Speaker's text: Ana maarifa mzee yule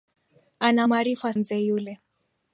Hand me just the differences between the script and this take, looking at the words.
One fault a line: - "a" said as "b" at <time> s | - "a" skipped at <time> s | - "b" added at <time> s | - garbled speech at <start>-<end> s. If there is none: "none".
none